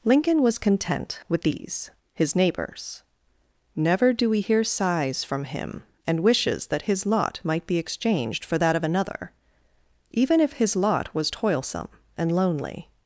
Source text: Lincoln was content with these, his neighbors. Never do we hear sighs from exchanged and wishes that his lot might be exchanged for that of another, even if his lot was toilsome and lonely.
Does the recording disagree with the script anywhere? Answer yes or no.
yes